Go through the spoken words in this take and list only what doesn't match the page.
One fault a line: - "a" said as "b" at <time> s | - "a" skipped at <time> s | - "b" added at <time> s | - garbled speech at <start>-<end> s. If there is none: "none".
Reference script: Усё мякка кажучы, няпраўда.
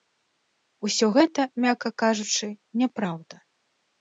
- "гэта" added at 1.1 s